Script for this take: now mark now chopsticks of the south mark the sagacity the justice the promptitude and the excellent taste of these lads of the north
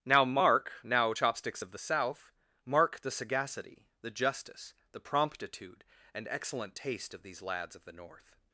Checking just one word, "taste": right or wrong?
right